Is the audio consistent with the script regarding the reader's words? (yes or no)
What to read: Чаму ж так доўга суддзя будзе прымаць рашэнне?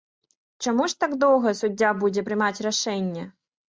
yes